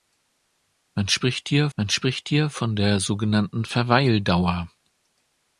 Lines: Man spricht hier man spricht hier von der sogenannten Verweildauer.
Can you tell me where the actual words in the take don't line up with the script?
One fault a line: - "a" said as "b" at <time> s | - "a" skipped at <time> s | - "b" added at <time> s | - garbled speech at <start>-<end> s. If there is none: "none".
none